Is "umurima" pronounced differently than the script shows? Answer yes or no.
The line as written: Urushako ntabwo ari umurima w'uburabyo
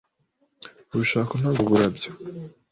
yes